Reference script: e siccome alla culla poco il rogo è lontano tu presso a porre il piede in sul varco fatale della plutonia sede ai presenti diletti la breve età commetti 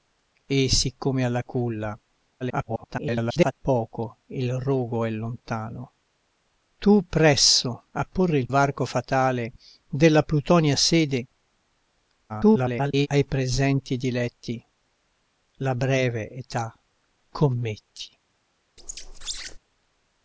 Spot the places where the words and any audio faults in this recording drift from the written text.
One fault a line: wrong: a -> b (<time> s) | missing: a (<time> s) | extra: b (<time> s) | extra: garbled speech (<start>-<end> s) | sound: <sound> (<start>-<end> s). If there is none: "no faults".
extra: garbled speech (2.4-3.5 s)
missing: piede in sul (8.5 s)
extra: garbled speech (12.3-13.1 s)
sound: squeak (18.8-19.6 s)